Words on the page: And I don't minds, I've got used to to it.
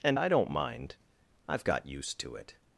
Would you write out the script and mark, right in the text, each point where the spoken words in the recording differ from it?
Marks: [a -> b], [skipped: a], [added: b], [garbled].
And I don't [minds, -> mind] I've got used to [skipped: to] it.